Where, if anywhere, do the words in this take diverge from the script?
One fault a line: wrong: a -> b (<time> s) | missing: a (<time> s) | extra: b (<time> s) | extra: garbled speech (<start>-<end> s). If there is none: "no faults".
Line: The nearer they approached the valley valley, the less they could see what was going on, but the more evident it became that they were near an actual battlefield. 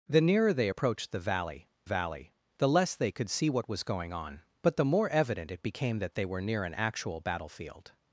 no faults